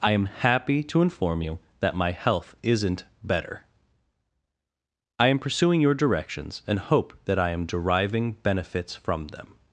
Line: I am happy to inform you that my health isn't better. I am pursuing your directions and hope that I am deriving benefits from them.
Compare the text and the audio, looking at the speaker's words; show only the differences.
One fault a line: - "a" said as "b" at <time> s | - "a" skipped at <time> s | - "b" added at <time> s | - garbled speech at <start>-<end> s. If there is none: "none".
none